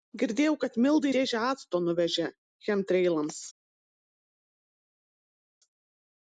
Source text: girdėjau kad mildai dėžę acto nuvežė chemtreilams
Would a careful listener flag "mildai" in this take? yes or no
no